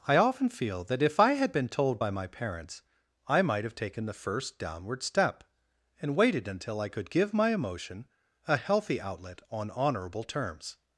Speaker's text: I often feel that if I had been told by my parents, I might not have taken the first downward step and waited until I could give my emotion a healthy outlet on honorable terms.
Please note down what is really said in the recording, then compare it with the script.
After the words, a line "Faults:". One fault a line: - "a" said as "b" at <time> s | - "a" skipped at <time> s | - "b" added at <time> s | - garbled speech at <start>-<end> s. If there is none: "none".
I often feel that if I had been told by my parents, I might have taken the first downward step and waited until I could give my emotion a healthy outlet on honorable terms.
Faults:
- "not" skipped at 3.6 s